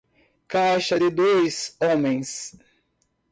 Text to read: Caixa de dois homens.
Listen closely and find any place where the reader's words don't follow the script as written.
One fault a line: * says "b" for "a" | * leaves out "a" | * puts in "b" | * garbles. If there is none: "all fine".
all fine